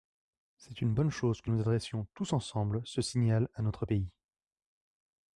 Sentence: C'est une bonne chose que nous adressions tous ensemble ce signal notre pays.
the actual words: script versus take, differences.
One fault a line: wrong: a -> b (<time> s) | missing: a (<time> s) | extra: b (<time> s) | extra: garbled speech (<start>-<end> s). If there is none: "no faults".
extra: à (3.5 s)